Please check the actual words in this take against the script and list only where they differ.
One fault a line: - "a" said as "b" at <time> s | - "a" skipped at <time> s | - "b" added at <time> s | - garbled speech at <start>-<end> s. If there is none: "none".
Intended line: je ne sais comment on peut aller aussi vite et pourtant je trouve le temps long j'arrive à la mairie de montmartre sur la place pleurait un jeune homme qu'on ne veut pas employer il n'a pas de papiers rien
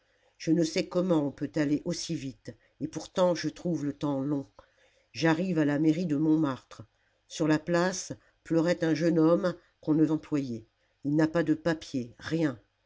- "veut pas" skipped at 10.1 s